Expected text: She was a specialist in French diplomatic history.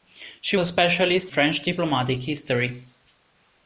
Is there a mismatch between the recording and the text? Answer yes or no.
yes